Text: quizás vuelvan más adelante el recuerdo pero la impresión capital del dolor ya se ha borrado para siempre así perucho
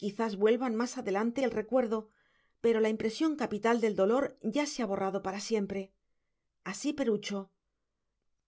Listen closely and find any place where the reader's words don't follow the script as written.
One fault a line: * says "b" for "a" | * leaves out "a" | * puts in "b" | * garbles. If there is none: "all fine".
all fine